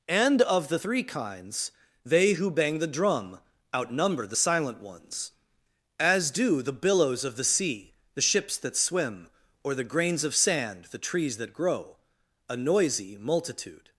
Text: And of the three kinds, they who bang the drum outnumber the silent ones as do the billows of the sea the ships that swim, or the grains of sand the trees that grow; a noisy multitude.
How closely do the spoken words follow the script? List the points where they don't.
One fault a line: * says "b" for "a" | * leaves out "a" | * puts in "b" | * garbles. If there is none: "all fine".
all fine